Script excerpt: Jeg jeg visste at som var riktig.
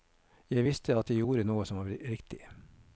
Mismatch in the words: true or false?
true